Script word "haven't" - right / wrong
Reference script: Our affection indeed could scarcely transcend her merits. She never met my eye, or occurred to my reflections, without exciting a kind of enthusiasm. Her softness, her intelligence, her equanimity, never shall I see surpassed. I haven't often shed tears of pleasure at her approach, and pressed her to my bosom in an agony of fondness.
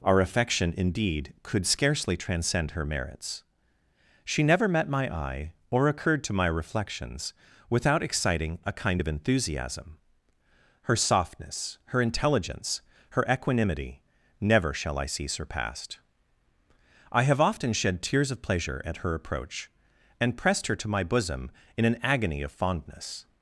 wrong